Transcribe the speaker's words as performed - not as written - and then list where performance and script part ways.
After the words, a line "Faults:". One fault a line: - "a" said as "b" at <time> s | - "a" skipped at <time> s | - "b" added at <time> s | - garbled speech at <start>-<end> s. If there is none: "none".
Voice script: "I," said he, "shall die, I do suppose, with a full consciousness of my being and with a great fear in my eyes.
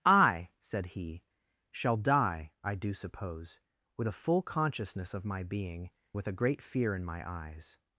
"I," said he, "shall die, I do suppose, with a full consciousness of my being with a great fear in my eyes.
Faults:
- "and" skipped at 5.9 s